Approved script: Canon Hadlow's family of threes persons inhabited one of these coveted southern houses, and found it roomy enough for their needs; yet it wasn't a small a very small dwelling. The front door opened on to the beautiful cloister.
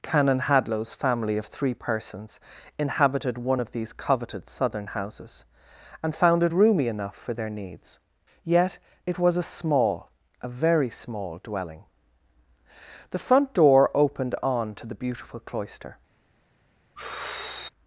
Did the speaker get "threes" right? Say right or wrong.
wrong